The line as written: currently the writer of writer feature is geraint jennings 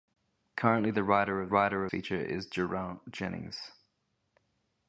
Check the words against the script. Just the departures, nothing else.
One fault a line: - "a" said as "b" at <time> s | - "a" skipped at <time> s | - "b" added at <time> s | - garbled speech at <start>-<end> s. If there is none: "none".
none